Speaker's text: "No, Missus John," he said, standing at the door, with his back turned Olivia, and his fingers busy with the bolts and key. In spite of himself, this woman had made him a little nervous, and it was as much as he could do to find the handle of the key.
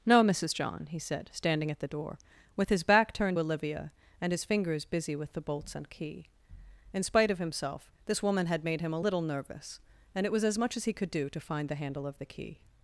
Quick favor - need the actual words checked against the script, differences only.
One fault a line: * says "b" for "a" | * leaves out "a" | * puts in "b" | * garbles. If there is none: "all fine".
all fine